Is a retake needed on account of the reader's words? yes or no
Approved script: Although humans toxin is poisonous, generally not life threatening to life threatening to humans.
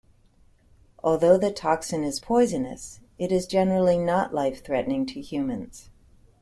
yes